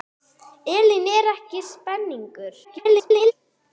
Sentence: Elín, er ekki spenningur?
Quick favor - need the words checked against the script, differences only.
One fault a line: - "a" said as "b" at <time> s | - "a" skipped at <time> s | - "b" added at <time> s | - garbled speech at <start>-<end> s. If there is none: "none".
- garbled speech at 2.6-3.3 s